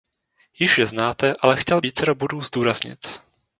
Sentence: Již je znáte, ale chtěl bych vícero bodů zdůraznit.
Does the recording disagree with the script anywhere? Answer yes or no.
yes